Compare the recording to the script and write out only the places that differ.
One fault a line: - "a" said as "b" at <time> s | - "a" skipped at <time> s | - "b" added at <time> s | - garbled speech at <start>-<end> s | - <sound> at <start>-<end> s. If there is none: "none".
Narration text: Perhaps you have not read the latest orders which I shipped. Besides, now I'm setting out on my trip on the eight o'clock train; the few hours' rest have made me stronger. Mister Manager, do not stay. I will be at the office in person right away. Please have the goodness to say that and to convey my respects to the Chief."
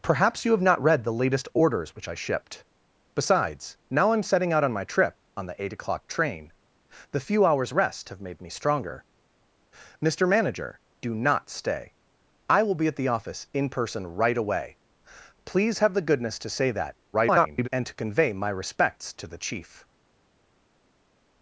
- garbled speech at 17.1-17.7 s